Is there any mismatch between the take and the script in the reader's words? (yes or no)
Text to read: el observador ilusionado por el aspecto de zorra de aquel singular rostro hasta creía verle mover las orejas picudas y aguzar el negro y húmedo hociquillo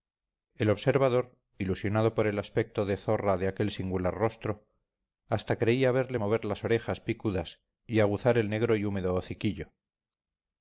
no